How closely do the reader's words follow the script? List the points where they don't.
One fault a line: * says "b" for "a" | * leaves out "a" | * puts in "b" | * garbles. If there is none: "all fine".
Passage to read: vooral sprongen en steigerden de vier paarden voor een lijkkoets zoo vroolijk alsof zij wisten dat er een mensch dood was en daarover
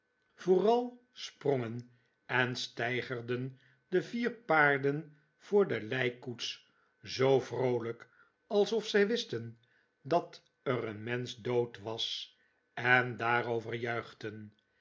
* says "de" for "een"